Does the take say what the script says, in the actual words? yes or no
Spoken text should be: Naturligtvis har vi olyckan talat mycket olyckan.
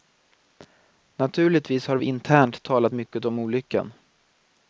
no